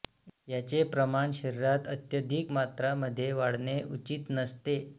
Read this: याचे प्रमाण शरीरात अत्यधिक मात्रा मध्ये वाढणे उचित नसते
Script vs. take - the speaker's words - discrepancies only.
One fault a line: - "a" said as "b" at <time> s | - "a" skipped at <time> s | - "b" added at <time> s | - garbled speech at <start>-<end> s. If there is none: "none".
none